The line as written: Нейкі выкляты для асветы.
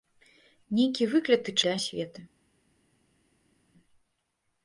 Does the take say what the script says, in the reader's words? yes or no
yes